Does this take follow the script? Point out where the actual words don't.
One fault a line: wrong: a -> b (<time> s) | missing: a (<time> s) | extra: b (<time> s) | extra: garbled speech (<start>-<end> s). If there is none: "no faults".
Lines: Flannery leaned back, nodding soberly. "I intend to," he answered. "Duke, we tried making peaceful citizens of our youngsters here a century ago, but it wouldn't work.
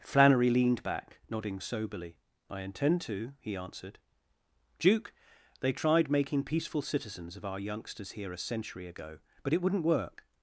wrong: we -> they (5.6 s)